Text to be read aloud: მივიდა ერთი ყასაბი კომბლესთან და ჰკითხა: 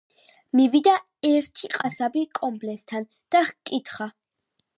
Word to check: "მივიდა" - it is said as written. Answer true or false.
true